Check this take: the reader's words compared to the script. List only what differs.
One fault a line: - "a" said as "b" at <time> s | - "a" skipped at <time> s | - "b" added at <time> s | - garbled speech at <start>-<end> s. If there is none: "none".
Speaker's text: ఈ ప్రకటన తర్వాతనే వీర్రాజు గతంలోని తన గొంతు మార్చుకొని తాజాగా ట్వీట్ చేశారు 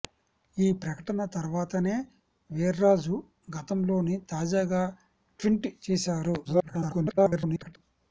- "తన గొంతు మార్చుకొని" skipped at 4.2 s
- garbled speech at 6.4-7.8 s